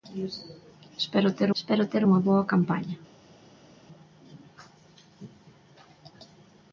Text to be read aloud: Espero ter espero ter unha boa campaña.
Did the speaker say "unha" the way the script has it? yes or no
yes